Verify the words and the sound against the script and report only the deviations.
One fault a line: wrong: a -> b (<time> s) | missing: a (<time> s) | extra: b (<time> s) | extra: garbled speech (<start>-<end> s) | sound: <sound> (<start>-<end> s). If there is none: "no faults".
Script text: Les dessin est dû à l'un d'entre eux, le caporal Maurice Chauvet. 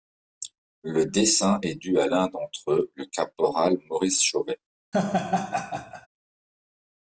wrong: Les -> Le (0.8 s)
sound: laugh (4.9-6.1 s)